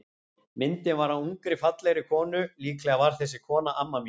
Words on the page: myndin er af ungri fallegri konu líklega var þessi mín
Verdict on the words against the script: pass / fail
fail